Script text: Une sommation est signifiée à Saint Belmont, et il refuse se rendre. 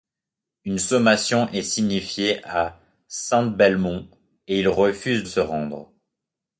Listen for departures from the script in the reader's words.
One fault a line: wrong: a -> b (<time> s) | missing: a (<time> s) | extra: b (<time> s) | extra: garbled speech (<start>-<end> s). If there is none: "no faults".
no faults